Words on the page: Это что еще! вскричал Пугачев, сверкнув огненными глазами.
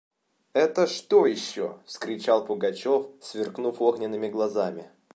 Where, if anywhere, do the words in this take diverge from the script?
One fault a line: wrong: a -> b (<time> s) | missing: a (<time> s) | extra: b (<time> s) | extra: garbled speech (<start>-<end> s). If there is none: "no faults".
no faults